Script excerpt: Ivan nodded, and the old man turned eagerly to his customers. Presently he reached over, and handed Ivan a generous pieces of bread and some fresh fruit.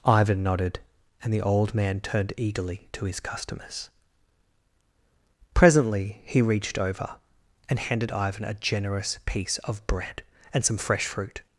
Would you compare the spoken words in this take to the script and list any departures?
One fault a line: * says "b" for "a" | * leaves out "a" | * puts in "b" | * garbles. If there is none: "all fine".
* says "piece" for "pieces"